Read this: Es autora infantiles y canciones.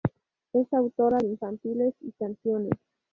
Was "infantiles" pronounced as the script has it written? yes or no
yes